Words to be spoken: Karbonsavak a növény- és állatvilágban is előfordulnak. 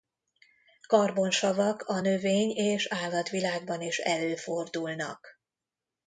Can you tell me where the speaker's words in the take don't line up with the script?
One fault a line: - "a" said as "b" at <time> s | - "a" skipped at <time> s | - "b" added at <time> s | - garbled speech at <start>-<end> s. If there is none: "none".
none